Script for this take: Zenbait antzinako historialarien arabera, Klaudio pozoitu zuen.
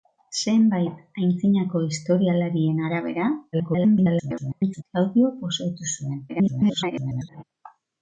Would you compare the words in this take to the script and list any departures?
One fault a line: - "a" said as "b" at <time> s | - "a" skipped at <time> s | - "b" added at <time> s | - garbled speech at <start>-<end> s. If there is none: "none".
- garbled speech at 3.5-4.8 s
- garbled speech at 6.3-7.4 s